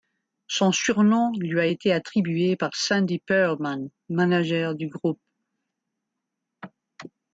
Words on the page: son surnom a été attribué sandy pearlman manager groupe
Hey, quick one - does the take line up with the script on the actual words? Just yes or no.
no